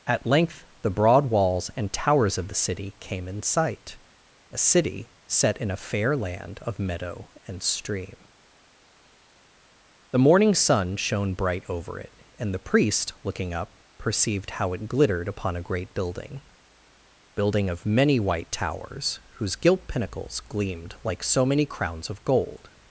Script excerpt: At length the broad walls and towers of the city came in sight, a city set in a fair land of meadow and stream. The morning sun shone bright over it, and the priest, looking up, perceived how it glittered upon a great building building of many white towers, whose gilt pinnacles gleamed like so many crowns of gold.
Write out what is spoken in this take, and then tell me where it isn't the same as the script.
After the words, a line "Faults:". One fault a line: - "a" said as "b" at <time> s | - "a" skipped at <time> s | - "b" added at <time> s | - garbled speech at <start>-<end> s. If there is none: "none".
At length the broad walls and towers of the city came in sight, a city set in a fair land of meadow and stream. The morning sun shone bright over it, and the priest, looking up, perceived how it glittered upon a great building building of many white towers, whose gilt pinnacles gleamed like so many crowns of gold.
Faults:
none